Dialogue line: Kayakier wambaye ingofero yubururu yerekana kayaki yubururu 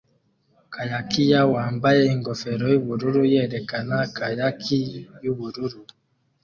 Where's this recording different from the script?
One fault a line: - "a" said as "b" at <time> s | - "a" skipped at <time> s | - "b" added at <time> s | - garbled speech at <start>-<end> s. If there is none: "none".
none